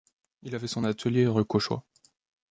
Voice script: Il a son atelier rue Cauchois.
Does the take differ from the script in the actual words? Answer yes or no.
yes